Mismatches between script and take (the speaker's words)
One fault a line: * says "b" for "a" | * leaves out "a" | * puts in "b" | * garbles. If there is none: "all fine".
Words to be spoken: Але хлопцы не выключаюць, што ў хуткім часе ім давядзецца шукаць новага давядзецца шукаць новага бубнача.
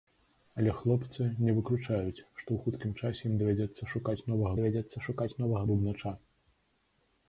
all fine